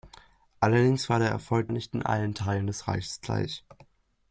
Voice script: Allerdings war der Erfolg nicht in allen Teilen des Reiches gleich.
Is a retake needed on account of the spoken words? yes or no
no